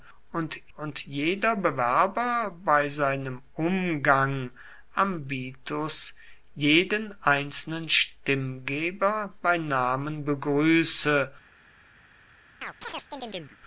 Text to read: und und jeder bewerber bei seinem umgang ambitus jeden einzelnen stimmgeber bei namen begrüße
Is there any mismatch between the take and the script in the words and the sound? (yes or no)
yes